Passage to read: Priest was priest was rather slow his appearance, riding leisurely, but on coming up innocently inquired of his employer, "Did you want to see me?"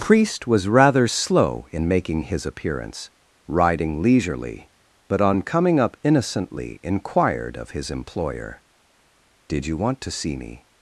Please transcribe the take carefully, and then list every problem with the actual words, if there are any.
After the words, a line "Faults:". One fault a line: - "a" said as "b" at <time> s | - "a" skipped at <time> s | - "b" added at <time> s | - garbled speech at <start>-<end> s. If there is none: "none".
Priest was rather slow in making his appearance, riding leisurely, but on coming up innocently inquired of his employer, "Did you want to see me?"
Faults:
- "priest was rather slow" said as "rather slow in making" at 0.7 s